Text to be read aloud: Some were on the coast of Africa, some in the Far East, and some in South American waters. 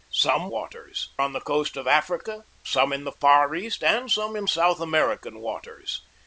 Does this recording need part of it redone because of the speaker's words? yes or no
yes